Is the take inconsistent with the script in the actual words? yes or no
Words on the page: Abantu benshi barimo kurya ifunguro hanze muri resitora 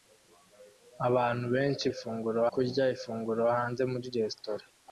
yes